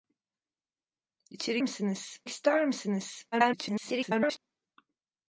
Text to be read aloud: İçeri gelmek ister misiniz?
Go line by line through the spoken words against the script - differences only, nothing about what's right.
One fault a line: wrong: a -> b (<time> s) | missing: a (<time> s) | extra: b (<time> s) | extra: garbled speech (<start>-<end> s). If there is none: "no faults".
wrong: gelmek -> misiniz (1.6 s)
extra: garbled speech (3.3-4.4 s)